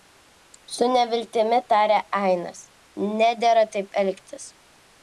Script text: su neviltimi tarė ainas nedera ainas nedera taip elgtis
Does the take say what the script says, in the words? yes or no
no